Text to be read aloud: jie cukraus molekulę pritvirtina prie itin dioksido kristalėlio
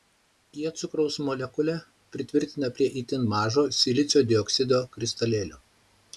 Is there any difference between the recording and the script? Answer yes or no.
yes